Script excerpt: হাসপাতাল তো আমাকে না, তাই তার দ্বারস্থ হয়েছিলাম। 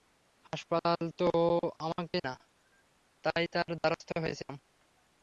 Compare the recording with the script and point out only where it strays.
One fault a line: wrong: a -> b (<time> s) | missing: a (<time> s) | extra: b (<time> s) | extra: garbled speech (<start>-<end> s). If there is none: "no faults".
no faults